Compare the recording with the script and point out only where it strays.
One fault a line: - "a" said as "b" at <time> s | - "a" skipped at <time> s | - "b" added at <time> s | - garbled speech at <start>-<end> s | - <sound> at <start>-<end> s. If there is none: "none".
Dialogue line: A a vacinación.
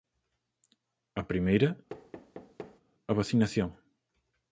- "primeira" added at 1.3 s
- thud at 1.9-2.8 s